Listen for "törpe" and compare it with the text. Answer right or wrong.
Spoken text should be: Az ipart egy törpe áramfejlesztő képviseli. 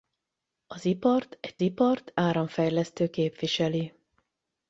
wrong